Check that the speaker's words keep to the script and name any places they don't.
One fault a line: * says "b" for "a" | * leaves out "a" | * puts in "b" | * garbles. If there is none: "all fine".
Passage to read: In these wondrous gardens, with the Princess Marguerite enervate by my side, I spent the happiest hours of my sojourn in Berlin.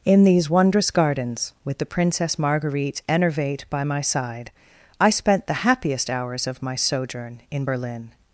all fine